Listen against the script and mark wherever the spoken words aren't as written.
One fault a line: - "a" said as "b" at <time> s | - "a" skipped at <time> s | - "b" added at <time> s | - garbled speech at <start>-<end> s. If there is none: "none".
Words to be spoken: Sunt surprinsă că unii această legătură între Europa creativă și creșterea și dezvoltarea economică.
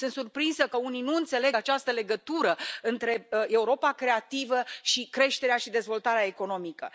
- "nu înțeleg" added at 1.0 s